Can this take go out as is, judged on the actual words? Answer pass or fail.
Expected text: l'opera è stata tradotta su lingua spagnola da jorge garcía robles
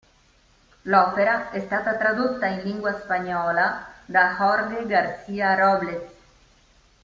fail